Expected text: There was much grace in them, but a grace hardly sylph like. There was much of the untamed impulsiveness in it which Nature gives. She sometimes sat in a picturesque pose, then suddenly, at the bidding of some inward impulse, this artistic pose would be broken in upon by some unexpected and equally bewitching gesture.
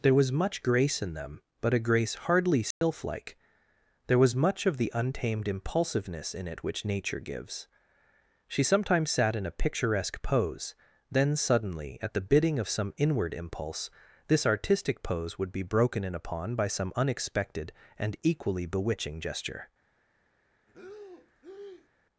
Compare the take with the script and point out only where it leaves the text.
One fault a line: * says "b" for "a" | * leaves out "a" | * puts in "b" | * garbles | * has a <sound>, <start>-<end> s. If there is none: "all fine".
* has a dropout, 2.7-2.8 s
* has a breath, 20.7-21.9 s